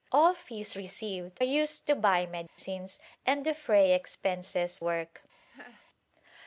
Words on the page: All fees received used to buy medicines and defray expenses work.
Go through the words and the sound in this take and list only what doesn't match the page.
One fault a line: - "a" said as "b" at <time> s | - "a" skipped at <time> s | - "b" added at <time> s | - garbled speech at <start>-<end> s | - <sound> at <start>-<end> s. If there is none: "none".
- dropout at 2.5-2.6 s
- laugh at 5.5-5.9 s